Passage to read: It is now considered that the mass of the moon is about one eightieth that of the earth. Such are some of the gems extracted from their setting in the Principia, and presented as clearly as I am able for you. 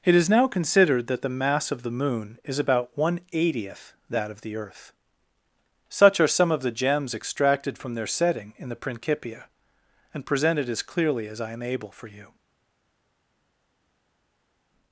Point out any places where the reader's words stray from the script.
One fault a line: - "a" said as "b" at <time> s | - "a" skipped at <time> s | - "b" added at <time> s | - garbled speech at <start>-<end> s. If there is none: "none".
none